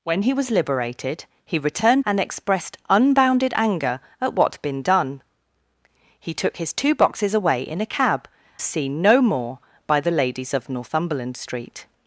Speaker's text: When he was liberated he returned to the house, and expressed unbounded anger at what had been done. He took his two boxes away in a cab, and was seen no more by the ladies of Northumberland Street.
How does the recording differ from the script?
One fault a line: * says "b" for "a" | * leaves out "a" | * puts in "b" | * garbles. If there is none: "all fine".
* leaves out "to the house"
* leaves out "and was"